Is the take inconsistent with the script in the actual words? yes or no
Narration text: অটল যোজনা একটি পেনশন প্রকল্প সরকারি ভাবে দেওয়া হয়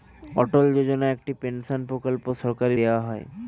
yes